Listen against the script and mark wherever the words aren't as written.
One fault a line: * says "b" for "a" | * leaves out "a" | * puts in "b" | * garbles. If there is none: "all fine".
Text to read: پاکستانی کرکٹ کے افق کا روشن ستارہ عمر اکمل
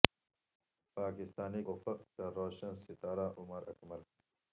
* leaves out "کرکٹ کے"